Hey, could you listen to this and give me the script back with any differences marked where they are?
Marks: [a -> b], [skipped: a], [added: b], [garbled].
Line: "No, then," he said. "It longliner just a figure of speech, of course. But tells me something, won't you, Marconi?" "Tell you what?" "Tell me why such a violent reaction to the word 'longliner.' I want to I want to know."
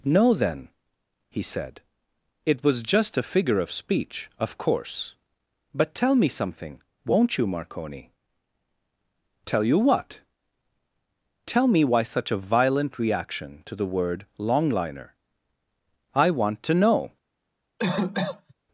"No, then," he said. "It [longliner -> was] just a figure of speech, of course. But [tells -> tell] me something, won't you, Marconi?" "Tell you what?" "Tell me why such a violent reaction to the word 'longliner.' I want to [skipped: I want to] know."